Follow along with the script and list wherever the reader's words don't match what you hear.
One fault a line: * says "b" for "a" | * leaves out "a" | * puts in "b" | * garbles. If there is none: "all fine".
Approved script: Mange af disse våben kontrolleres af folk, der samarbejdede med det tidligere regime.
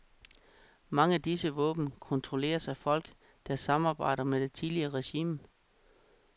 all fine